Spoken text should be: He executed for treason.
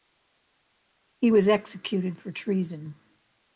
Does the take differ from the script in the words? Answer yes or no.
yes